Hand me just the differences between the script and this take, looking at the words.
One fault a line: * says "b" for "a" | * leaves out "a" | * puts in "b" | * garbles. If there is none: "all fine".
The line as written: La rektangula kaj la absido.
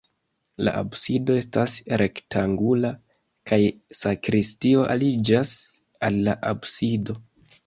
* puts in "absido estas"
* puts in "sakristio aliĝas al"